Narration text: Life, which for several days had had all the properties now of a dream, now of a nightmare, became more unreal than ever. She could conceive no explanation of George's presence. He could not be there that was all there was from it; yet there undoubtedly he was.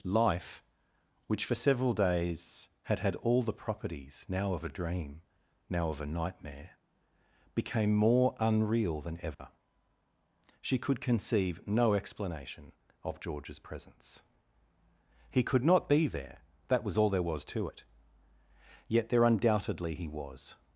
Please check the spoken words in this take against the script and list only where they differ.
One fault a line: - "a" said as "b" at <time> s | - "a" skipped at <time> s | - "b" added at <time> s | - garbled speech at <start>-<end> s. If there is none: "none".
- "from" said as "to" at 17.4 s